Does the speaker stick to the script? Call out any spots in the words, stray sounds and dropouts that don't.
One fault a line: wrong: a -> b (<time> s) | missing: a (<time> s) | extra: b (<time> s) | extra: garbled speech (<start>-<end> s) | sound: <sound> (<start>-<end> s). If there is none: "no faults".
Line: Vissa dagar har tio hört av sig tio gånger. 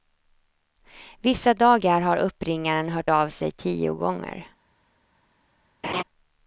wrong: tio -> uppringaren (2.2 s)
sound: laugh (5.8-6.0 s)